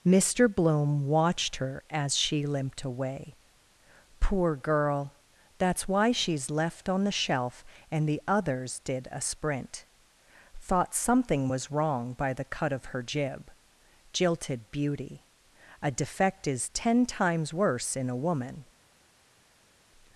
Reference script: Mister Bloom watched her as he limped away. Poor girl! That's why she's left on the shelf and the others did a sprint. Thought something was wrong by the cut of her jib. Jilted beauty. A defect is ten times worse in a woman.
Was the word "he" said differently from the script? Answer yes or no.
yes